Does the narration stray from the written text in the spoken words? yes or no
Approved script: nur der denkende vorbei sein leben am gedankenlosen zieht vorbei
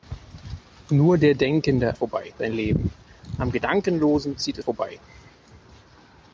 no